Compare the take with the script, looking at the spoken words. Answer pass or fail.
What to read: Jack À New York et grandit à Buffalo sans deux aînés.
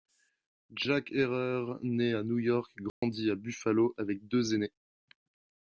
fail